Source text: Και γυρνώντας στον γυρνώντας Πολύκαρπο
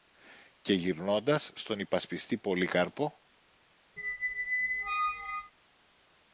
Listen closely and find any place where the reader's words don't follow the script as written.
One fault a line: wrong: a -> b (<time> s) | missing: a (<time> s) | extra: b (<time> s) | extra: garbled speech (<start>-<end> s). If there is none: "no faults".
wrong: γυρνώντας -> υπασπιστή (1.8 s)